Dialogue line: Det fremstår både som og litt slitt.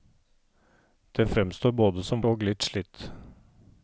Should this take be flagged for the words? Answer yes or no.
no